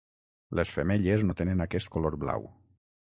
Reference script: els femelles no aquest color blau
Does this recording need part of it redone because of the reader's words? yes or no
yes